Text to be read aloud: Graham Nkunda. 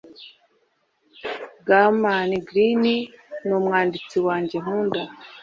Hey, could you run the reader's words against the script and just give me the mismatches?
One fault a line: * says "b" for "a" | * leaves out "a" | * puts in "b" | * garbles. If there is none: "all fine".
* puts in "Greene numwanditsi wanjye"